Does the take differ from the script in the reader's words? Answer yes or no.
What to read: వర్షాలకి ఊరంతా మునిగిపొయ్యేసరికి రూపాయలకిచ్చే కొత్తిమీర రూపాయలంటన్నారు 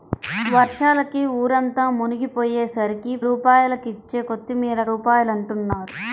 no